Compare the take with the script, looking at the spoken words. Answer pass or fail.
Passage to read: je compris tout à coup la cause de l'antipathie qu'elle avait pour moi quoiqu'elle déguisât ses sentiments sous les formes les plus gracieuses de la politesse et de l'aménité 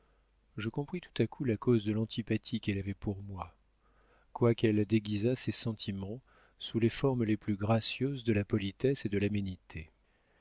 pass